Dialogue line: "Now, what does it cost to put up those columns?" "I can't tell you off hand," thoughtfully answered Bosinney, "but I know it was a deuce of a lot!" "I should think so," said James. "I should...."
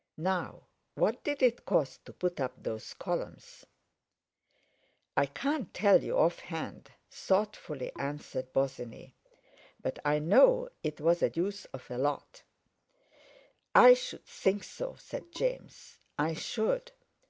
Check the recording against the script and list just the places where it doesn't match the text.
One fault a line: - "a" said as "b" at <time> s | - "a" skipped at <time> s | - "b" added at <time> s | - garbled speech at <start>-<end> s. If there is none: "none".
- "does" said as "did" at 1.2 s